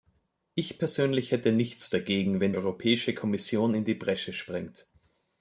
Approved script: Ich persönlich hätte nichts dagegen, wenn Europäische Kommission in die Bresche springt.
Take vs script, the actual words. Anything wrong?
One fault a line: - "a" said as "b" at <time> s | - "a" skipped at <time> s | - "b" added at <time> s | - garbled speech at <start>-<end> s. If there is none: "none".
none